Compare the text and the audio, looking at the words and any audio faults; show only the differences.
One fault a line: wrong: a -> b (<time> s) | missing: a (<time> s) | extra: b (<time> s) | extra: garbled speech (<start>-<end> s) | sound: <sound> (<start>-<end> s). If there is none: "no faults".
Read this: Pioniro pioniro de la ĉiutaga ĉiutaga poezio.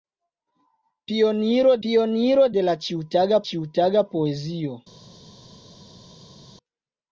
no faults